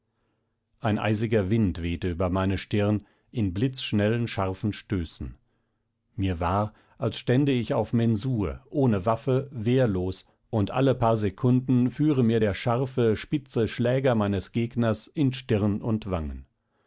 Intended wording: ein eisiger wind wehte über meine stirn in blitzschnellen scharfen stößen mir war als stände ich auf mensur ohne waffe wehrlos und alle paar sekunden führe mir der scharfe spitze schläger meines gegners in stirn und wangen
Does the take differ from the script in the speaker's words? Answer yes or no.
no